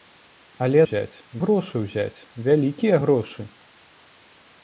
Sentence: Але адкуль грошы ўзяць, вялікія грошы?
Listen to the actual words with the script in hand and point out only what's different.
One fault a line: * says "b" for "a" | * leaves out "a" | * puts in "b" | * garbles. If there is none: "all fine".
* says "ўзяць" for "адкуль"